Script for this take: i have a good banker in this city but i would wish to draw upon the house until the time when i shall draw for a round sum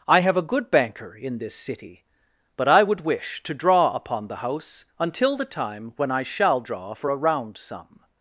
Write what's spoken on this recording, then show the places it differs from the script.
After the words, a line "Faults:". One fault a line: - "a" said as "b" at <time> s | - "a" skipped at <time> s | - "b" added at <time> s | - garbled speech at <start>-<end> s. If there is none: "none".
i have a good banker in this city but i would wish to draw upon the house until the time when i shall draw for a round sum
Faults:
none